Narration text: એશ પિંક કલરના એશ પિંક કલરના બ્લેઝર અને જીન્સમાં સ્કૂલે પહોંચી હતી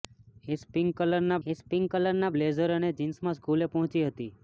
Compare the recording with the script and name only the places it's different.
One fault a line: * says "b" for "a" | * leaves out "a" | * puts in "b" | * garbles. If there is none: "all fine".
all fine